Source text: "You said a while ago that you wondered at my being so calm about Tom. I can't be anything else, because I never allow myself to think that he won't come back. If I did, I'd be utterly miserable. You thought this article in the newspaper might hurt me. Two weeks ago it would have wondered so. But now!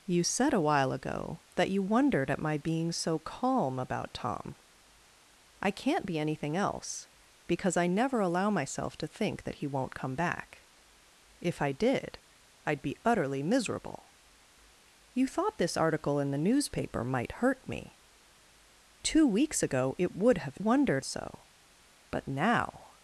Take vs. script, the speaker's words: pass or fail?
pass